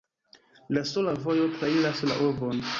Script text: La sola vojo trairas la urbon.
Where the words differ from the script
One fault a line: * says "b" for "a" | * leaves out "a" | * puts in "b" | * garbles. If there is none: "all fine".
all fine